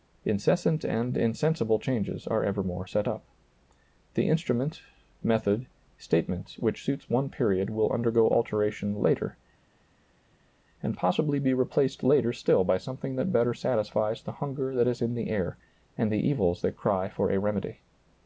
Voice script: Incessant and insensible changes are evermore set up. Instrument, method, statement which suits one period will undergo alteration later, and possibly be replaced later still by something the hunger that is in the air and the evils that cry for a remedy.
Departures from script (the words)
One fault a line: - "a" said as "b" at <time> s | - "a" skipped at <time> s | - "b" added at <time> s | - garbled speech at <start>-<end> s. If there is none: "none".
- "The" added at 4.1 s
- "that better satisfies" added at 13.2 s